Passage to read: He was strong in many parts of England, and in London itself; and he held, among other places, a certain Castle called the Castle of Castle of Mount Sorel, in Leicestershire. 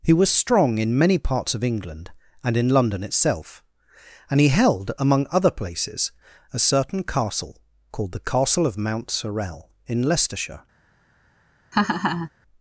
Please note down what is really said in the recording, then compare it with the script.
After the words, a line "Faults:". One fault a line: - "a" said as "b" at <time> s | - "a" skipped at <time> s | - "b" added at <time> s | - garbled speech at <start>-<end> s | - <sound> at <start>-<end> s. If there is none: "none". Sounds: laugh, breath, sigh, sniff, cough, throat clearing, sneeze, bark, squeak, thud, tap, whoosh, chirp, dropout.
He was strong in many parts of England, and in London itself; and he held, among other places, a certain Castle called the Castle of Mount Sorel, in Leicestershire.
Faults:
- "Castle of" skipped at 8.8 s
- laugh at 11.7-12.3 s